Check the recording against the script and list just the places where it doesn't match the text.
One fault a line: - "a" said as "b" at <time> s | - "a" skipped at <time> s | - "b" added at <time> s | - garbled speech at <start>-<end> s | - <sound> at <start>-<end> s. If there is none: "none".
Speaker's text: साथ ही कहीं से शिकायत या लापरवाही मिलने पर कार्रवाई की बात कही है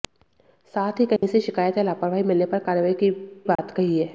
- dropout at 1.2-1.2 s
- dropout at 3.6-3.6 s